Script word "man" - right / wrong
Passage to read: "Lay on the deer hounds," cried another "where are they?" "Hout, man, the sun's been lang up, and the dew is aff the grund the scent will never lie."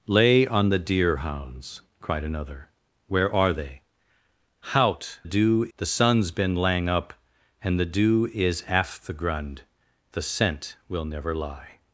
wrong